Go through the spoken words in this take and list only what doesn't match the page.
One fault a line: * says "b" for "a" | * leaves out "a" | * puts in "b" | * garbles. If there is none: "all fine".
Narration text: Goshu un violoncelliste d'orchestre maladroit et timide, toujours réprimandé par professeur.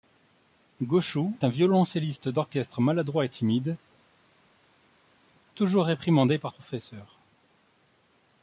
all fine